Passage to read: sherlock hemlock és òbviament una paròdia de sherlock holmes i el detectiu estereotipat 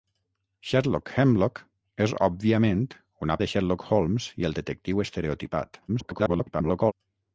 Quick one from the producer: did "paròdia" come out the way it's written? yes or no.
no